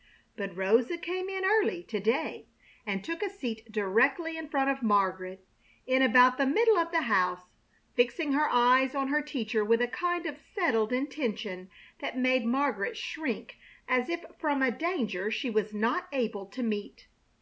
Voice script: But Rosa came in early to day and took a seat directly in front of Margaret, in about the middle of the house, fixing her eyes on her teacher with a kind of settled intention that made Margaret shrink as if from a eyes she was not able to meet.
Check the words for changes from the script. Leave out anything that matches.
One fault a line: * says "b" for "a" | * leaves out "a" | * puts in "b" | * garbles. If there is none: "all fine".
* says "danger" for "eyes"